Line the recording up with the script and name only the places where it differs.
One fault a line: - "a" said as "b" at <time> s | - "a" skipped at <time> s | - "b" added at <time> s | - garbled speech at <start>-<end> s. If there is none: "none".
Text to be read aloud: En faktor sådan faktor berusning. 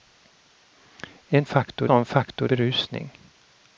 none